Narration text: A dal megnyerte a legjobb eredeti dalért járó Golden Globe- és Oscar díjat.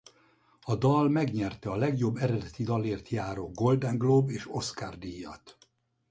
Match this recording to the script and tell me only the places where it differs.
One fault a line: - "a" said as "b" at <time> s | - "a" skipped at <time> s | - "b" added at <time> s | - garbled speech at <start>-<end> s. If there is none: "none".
none